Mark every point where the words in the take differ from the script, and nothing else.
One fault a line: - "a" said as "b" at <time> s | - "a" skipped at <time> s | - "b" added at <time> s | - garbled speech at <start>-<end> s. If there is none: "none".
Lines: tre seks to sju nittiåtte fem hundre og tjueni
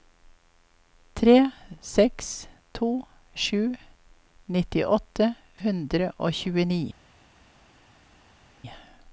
- "fem" skipped at 5.3 s